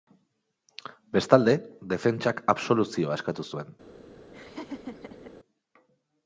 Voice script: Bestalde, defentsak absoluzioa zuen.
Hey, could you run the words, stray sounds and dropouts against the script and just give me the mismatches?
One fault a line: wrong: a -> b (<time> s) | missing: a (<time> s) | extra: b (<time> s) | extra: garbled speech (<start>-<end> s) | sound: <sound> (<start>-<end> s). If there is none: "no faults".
extra: eskatu (3.2 s)
sound: laugh (4.3-5.3 s)